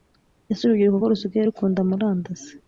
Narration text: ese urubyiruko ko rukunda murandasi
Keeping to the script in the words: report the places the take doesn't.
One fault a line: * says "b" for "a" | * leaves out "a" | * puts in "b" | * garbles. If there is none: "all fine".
* puts in "rusigaye"